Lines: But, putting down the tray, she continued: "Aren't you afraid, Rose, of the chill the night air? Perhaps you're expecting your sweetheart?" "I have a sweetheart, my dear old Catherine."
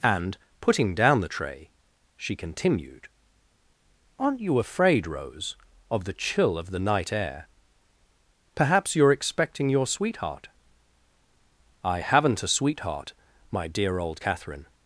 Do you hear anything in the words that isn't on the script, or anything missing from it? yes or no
yes